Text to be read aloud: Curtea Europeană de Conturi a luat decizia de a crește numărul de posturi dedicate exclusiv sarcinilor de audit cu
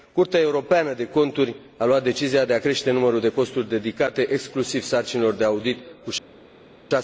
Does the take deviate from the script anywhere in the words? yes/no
no